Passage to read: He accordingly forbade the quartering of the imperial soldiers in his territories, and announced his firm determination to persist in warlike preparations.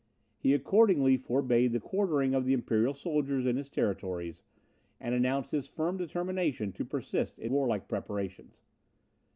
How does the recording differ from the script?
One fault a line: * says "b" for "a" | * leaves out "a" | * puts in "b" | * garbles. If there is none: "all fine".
all fine